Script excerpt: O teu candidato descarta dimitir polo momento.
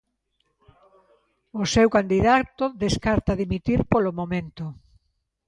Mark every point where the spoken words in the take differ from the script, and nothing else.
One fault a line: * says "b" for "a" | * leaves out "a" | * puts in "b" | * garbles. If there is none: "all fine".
* says "seu" for "teu"